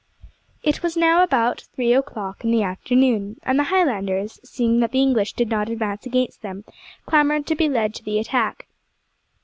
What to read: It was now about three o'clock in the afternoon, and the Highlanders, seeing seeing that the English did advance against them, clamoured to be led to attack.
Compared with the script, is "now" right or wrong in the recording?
right